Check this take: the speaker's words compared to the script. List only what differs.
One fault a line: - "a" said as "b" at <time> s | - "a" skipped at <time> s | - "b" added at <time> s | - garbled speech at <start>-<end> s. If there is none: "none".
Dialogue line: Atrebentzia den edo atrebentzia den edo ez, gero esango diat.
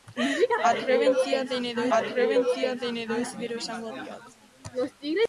none